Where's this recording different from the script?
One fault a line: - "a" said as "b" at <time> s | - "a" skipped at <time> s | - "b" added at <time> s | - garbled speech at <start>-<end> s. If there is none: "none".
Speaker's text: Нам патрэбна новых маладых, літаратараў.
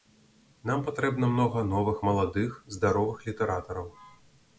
- "многа" added at 1.3 s
- "здаровых" added at 2.8 s